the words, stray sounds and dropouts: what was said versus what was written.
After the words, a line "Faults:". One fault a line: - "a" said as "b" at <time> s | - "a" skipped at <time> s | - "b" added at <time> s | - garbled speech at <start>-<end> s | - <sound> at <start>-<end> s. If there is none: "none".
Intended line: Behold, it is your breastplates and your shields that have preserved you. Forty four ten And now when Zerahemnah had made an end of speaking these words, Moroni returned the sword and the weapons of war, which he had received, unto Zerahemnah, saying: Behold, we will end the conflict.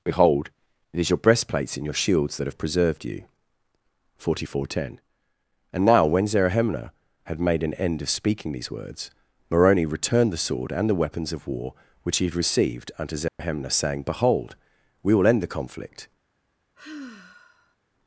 Behold, it is your breastplates and your shields that have preserved you. Forty four ten And now when Zerahemnah had made an end of speaking these words, Moroni returned the sword and the weapons of war, which he had received, unto Zerahemnah, saying: Behold, we will end the conflict.
Faults:
- dropout at 13.3-13.4 s
- sigh at 16.7-17.8 s